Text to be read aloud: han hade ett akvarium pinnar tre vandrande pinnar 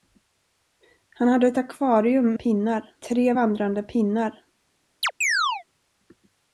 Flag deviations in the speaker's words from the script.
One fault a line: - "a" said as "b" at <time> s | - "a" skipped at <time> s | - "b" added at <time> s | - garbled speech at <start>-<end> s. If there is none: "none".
none